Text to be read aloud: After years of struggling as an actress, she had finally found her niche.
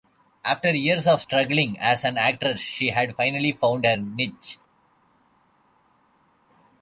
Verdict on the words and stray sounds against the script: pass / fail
pass